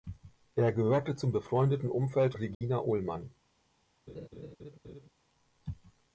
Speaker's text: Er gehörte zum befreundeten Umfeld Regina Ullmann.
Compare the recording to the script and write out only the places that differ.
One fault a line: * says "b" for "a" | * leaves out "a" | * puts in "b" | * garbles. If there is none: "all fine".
all fine